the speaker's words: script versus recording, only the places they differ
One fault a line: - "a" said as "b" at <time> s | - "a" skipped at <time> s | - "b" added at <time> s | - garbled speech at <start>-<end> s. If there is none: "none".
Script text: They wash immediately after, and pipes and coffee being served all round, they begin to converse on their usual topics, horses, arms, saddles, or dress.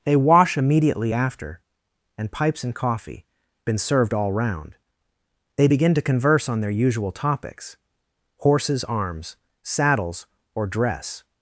- "being" said as "been" at 3.6 s